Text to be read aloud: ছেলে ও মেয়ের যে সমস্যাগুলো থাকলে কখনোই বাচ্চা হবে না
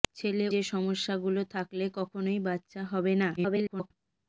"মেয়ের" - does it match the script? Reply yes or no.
no